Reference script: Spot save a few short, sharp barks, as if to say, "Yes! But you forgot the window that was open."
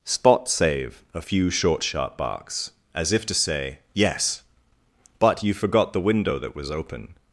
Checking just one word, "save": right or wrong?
right